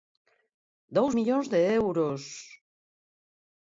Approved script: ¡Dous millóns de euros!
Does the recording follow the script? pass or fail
pass